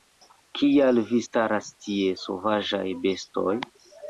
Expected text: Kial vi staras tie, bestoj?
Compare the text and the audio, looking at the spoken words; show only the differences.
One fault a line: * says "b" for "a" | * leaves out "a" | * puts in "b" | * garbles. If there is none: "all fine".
* puts in "sovaĝaj"